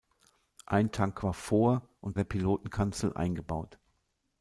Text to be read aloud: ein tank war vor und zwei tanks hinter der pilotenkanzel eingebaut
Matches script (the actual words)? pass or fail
fail